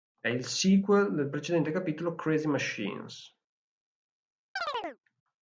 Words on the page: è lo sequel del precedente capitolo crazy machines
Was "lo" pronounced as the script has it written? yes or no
no